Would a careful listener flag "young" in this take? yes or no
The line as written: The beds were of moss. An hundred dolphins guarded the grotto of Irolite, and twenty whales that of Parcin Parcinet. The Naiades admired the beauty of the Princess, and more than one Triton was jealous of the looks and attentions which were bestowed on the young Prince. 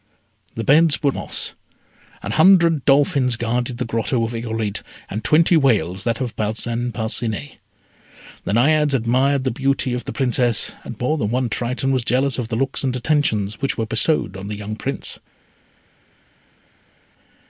no